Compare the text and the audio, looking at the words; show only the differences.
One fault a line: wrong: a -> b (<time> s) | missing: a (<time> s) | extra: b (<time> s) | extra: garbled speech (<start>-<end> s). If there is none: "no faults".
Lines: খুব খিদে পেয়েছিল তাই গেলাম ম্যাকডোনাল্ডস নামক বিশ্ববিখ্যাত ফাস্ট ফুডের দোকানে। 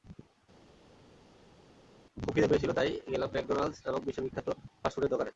no faults